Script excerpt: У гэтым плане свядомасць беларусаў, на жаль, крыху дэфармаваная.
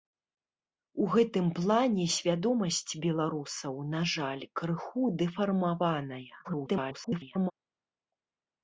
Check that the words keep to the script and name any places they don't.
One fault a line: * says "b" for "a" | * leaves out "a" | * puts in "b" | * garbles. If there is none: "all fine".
* garbles